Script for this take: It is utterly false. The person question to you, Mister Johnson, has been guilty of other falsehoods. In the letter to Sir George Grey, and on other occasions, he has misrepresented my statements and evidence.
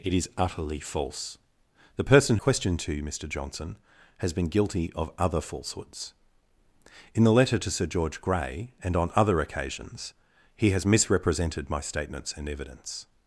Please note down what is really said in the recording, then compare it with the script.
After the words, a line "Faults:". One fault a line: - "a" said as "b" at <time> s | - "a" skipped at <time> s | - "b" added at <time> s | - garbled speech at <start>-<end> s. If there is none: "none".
It is utterly false. The person question to you, Mister Johnson, has been guilty of other falsehoods. In the letter to Sir George Grey, and on other occasions, he has misrepresented my statements and evidence.
Faults:
none